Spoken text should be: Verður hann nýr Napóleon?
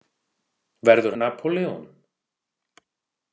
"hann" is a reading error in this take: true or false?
true